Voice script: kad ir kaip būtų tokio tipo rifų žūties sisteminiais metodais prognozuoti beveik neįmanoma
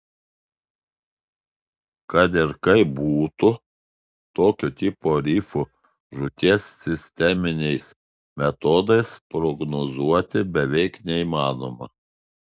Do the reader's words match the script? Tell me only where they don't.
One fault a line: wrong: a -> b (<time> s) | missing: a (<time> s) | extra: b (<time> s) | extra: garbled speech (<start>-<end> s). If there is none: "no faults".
no faults